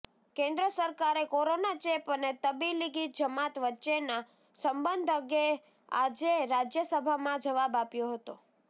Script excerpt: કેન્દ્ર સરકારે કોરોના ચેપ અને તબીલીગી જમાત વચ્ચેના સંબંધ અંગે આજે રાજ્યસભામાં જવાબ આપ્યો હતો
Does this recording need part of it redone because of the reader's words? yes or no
no